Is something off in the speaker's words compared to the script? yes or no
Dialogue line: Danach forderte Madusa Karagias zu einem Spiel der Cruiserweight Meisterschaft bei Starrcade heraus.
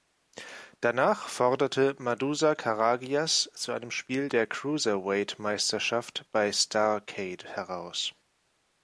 no